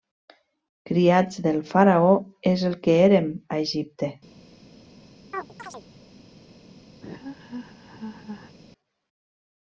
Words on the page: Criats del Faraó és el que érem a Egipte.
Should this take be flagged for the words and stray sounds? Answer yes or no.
yes